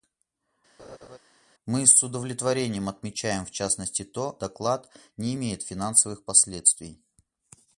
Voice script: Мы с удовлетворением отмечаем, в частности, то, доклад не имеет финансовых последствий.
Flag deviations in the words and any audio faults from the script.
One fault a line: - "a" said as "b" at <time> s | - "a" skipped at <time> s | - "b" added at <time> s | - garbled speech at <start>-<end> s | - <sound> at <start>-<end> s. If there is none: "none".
- laugh at 0.8-1.2 s